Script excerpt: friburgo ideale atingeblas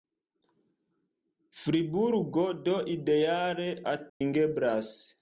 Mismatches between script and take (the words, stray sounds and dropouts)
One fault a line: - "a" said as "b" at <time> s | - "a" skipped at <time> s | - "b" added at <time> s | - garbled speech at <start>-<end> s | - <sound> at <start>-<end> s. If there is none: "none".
- "do" added at 2.5 s
- dropout at 4.1-4.2 s